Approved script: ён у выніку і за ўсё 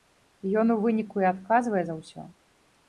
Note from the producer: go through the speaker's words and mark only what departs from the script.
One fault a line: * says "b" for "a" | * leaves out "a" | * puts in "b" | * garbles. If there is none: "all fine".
* puts in "адказвае"